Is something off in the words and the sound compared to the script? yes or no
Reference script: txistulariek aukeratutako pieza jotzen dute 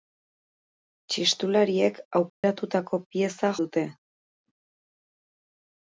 yes